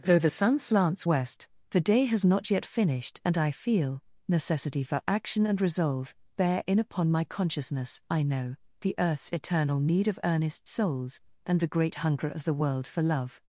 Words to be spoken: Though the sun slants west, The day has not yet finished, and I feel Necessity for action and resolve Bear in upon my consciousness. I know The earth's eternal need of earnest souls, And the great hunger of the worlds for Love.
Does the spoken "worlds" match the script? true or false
false